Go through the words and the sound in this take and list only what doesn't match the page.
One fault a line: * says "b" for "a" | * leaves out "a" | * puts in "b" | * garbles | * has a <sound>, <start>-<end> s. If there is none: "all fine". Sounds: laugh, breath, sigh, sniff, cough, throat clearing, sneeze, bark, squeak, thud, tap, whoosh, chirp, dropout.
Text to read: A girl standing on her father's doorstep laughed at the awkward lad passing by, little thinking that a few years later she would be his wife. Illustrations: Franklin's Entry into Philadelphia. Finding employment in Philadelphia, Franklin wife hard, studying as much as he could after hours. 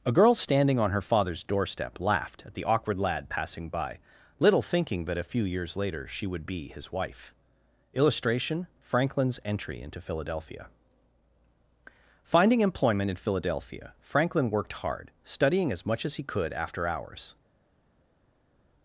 * says "Illustration" for "Illustrations"
* says "worked" for "wife"